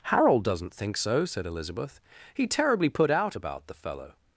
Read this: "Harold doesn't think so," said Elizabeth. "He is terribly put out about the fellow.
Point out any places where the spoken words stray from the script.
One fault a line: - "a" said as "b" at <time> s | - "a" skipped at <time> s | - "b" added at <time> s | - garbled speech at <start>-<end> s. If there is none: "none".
- "is" skipped at 2.5 s